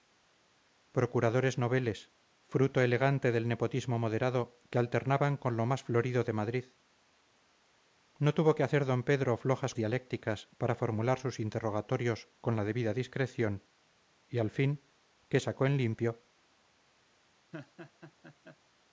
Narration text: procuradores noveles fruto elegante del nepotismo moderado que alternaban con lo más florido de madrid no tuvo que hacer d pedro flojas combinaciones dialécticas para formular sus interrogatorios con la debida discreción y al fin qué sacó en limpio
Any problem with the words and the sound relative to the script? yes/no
yes